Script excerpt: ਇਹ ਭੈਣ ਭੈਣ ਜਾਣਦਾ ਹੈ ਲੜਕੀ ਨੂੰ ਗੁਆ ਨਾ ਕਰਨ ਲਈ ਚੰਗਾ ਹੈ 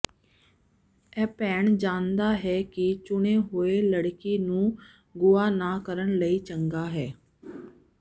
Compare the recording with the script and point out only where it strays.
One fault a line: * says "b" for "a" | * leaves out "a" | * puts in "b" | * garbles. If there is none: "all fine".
* leaves out "ਭੈਣ"
* puts in "ਕਿ ਚੁਣੇ ਹੋਏ"